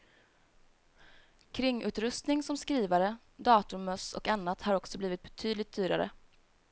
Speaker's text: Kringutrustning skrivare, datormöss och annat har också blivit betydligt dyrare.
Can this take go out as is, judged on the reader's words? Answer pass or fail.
fail